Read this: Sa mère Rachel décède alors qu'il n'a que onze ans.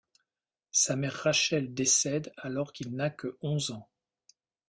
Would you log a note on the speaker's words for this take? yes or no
no